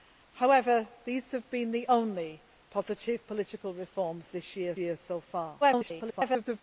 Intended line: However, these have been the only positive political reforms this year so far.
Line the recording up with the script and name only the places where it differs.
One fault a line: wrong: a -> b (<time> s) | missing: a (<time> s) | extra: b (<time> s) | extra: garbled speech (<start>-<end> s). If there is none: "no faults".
extra: year (4.8 s)
extra: garbled speech (5.6-6.6 s)